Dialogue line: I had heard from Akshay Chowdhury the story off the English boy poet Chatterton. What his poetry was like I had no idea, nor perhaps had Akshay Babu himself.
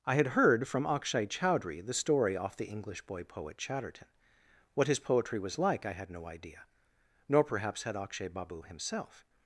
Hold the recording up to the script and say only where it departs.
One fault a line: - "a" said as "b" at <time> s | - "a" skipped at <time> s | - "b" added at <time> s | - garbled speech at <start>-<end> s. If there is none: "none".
none